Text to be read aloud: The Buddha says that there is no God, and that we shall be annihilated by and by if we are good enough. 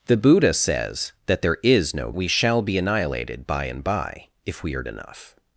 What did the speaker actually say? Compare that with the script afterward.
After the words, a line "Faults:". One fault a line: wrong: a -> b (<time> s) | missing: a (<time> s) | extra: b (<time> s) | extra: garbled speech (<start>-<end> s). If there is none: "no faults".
The Buddha says that there is no We shall be annihilated by and by if we are enough.
Faults:
missing: God and that (2.1 s)
missing: good (4.8 s)